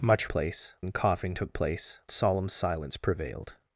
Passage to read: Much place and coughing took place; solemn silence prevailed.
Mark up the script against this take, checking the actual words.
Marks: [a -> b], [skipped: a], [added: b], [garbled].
Much place and coughing took place; solemn silence prevailed.